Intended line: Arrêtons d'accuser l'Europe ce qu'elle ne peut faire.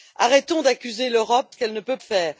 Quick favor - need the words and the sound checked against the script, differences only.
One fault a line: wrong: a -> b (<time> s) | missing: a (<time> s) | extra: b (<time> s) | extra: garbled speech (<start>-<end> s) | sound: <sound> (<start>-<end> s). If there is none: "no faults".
no faults